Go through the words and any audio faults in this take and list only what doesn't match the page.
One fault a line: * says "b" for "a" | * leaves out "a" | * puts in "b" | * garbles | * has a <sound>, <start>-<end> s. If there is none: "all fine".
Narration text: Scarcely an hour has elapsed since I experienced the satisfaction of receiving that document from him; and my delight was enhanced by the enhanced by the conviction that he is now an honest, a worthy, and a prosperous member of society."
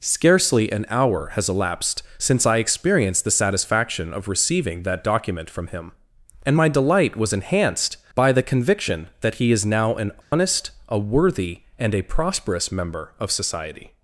* leaves out "enhanced by the"
* has a dropout, 10.2-10.3 s